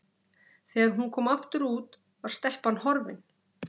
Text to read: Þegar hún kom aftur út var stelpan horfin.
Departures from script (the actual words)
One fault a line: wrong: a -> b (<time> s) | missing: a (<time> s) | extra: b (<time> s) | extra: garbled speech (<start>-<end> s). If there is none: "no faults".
no faults